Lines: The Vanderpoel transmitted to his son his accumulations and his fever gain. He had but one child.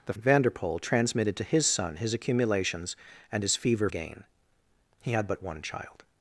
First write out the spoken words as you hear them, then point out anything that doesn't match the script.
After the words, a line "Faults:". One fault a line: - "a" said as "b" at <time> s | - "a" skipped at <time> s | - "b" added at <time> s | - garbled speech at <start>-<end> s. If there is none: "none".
The Vanderpoel transmitted to his son his accumulations and his fever gain. He had but one child.
Faults:
none